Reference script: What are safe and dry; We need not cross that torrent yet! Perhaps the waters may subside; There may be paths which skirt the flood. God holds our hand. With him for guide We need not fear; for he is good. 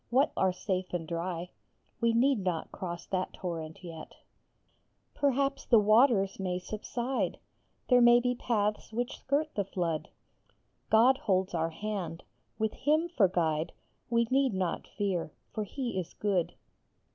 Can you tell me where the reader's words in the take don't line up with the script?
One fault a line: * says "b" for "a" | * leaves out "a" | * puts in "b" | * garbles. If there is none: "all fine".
all fine